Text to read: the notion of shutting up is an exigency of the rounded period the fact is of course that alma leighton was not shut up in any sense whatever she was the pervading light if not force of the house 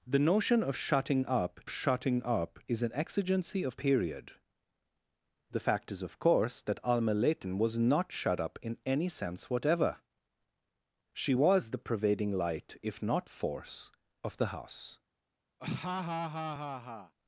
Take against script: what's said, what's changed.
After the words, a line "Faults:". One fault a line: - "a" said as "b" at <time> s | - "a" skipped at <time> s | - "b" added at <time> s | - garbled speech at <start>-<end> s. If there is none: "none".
the notion of shutting up shutting up is an exigency of period the fact is of course that alma leighton was not shut up in any sense whatever she was the pervading light if not force of the house
Faults:
- "shutting up" added at 1.7 s
- "the rounded" skipped at 3.8 s